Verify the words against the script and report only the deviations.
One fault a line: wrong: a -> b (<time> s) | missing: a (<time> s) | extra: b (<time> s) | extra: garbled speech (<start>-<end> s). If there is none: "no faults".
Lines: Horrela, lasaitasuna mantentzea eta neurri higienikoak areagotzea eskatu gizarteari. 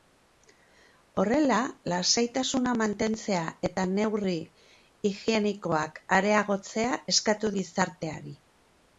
no faults